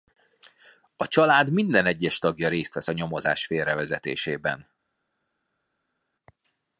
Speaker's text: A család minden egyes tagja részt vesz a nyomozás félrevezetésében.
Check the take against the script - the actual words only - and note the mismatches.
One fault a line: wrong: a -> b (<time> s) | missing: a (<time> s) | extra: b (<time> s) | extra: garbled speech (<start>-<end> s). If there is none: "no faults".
no faults